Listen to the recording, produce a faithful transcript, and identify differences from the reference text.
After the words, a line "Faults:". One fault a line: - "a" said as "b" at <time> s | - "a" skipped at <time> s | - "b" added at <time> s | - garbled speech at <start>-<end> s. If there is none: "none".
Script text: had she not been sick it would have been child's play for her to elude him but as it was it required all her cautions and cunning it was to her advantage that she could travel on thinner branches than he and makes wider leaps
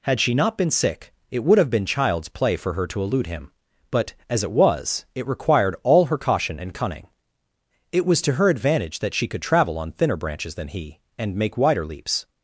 had she not been sick it would have been child's play for her to elude him but as it was it required all her caution and cunning it was to her advantage that she could travel on thinner branches than he and make wider leaps
Faults:
- "cautions" said as "caution" at 6.2 s
- "makes" said as "make" at 11.4 s